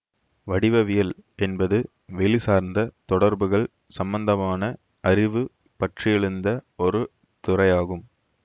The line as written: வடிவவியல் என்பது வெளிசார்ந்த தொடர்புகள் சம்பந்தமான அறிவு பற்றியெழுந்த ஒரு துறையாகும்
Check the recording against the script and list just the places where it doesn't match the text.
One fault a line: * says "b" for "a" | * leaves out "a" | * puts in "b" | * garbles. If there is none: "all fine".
all fine